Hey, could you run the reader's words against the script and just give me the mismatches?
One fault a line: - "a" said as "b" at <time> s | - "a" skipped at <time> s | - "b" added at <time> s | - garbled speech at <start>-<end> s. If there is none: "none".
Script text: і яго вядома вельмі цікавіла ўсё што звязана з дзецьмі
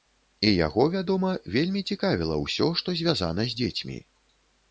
none